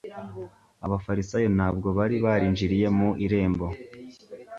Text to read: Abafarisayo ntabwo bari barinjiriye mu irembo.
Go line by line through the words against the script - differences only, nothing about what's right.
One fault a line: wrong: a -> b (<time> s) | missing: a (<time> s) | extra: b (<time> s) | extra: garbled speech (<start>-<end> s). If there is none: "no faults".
no faults